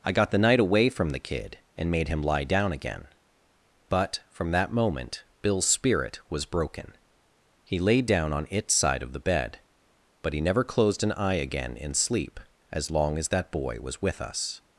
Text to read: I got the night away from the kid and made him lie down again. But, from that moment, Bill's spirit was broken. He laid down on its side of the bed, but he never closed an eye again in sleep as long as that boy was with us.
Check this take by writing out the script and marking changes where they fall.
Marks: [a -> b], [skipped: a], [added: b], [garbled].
I got the night away from the kid and made him lie down again. But, from that moment, Bill's spirit was broken. He laid down on its side of the bed, but he never closed an eye again in sleep as long as that boy was with us.